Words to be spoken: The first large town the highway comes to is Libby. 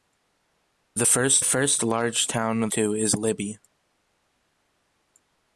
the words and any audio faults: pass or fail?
fail